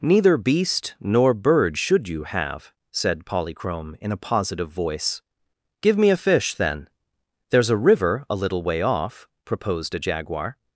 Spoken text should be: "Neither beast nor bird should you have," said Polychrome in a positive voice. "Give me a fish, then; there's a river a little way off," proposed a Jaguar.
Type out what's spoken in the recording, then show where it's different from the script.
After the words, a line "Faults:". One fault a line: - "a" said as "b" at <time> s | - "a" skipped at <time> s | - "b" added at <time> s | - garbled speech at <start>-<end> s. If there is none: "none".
"Neither beast nor bird should you have," said Polychrome in a positive voice. "Give me a fish, then; there's a river a little way off," proposed a Jaguar.
Faults:
none